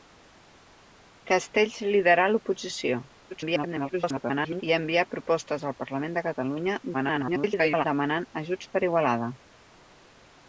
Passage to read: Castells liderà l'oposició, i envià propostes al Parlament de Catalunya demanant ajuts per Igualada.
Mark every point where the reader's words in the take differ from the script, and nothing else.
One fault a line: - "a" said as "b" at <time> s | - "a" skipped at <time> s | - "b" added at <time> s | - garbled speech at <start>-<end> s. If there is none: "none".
- garbled speech at 3.3-4.6 s
- garbled speech at 6.9-7.9 s